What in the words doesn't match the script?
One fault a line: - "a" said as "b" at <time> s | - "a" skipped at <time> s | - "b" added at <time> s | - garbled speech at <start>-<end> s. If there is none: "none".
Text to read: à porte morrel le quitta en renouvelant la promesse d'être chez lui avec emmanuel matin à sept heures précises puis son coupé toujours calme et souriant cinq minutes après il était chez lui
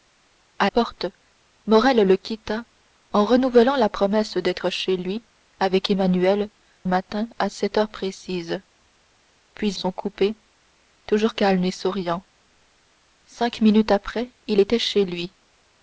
none